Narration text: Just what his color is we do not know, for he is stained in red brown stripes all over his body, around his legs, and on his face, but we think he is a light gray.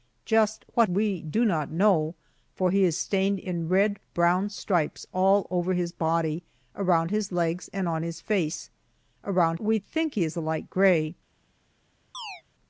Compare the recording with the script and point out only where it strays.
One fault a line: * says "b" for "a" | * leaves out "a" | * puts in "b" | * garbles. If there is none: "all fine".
* leaves out "his color is"
* says "around" for "but"